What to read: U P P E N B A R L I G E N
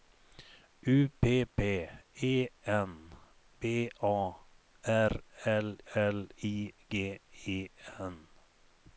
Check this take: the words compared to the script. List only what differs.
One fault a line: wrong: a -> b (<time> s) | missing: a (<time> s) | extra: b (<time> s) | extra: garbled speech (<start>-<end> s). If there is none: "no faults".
extra: L (5.9 s)